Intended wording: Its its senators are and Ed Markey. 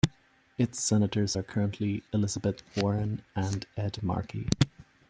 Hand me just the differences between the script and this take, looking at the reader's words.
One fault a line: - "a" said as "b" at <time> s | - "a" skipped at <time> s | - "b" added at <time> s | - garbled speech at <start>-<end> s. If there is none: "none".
- "its" skipped at 0.8 s
- "currently Elizabeth Warren" added at 1.4 s